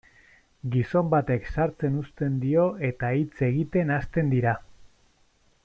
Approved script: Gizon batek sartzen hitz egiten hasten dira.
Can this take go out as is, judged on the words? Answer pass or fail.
fail